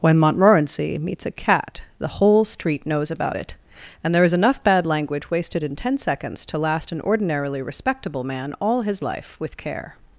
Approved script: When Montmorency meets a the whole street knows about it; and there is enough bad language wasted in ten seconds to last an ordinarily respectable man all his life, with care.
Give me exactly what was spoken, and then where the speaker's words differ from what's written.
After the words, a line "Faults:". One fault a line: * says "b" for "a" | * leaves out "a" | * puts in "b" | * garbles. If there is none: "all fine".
When Montmorency meets a cat, the whole street knows about it; and there is enough bad language wasted in ten seconds to last an ordinarily respectable man all his life, with care.
Faults:
* puts in "cat"